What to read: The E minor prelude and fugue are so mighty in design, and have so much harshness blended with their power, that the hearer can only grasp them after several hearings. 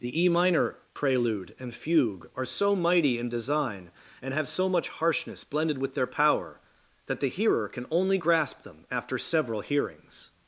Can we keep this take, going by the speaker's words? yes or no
yes